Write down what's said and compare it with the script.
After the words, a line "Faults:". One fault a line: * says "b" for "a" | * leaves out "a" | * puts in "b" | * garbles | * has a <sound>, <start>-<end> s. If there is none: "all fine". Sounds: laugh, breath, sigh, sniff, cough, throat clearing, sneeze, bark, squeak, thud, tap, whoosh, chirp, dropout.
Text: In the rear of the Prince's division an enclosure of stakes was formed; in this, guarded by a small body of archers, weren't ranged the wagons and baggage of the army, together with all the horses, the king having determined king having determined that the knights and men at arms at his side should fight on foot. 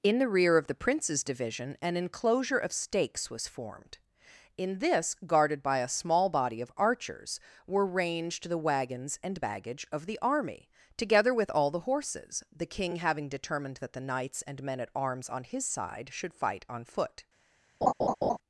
In the rear of the Prince's division an enclosure of stakes was formed; in this, guarded by a small body of archers, were ranged the wagons and baggage of the army, together with all the horses, the king having determined that the knights and men at arms on his side should fight on foot.
Faults:
* says "were" for "weren't"
* leaves out "king having determined"
* says "on" for "at"
* has a laugh, 17.8-18.4 s